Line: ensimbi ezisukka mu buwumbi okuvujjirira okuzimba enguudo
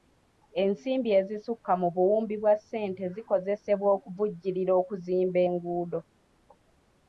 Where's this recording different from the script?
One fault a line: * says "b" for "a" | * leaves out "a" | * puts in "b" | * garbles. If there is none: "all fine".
* puts in "bwa ssente zikozesebwa"